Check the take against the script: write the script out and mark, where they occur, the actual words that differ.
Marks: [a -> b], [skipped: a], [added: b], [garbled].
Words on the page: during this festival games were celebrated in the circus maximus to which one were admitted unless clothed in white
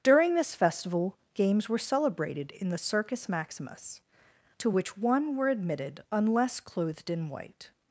during this festival games were celebrated in the circus maximus to which one were admitted unless clothed in white